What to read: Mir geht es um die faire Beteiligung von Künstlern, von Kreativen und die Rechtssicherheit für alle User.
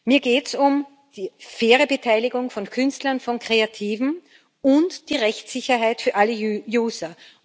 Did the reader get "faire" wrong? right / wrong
right